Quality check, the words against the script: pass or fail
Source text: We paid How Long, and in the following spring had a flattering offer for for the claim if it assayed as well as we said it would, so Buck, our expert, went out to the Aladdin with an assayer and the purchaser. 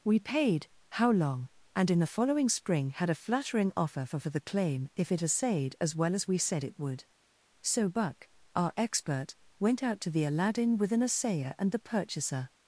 pass